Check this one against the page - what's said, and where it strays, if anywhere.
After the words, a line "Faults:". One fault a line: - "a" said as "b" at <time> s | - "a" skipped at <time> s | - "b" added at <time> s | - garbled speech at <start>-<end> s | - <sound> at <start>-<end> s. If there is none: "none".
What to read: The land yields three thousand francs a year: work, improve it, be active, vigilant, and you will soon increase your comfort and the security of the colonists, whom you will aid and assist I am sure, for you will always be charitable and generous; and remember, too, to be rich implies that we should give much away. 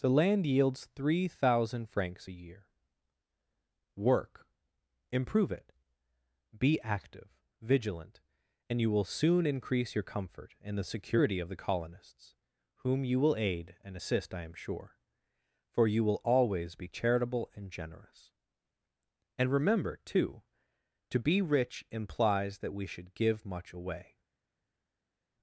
The land yields three thousand francs a year: work, improve it, be active, vigilant, and you will soon increase your comfort and the security of the colonists, whom you will aid and assist I am sure, for you will always be charitable and generous; and remember, too, to be rich implies that we should give much away.
Faults:
none